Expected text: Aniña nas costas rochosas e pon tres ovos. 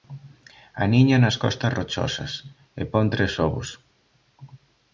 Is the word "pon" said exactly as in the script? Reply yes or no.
yes